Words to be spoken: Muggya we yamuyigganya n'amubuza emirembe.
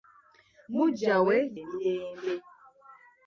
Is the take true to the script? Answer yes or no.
no